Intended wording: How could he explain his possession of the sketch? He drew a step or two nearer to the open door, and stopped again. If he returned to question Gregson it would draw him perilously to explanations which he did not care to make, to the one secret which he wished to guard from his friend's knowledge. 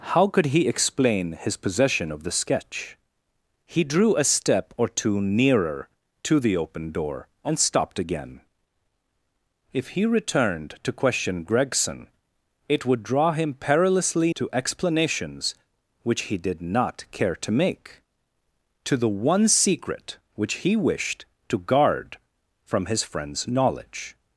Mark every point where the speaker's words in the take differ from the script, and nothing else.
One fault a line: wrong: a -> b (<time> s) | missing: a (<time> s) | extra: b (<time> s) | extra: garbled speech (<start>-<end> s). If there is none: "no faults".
no faults